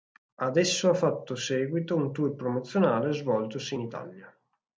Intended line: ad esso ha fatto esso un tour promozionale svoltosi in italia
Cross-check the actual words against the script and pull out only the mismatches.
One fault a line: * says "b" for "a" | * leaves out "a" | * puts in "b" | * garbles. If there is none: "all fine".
* says "seguito" for "esso"